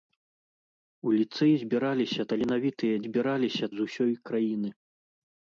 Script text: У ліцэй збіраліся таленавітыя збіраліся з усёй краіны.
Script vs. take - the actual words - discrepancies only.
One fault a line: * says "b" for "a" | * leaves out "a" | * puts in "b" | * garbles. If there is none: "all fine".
all fine